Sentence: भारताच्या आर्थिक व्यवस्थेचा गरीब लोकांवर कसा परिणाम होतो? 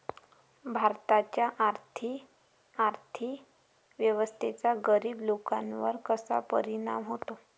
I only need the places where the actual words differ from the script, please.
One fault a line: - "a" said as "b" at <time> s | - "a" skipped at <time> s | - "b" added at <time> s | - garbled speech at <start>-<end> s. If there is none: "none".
- "आर्थिक" added at 2.8 s